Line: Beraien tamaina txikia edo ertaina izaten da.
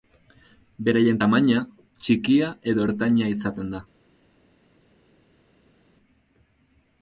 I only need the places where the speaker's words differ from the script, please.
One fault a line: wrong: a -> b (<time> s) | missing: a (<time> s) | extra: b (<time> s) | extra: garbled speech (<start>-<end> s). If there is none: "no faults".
no faults